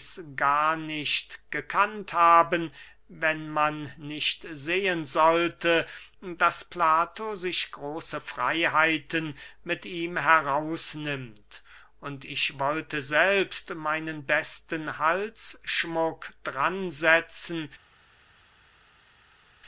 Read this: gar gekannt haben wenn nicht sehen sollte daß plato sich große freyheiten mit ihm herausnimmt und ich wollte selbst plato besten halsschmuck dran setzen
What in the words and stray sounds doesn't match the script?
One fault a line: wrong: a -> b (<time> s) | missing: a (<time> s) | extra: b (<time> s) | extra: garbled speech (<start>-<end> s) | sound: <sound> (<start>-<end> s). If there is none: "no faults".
extra: nicht (0.8 s)
extra: man (3.5 s)
wrong: plato -> meinen (13.7 s)